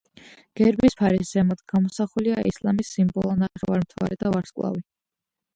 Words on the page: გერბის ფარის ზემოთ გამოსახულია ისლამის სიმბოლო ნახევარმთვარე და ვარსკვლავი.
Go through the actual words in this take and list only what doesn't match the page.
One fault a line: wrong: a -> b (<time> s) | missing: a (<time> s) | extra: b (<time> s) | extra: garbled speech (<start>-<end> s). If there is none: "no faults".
no faults